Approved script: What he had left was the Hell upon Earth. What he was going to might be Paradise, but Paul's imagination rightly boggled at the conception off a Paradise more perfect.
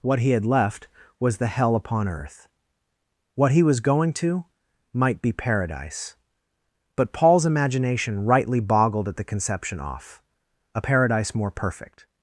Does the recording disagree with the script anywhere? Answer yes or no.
no